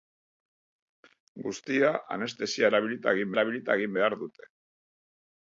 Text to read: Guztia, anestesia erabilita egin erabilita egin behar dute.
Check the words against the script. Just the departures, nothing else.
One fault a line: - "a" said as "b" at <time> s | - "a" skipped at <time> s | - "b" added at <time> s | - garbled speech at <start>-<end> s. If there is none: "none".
none